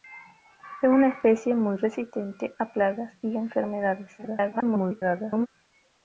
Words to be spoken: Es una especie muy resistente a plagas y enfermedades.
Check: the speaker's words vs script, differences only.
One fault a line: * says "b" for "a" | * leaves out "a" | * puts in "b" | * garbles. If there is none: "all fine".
* garbles